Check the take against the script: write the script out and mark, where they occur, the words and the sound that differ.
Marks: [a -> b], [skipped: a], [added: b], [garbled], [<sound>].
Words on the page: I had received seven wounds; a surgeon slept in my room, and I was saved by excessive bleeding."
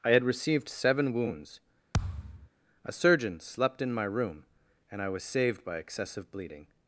I had received seven wounds; [thud] a surgeon slept in my room, and I was saved by excessive bleeding."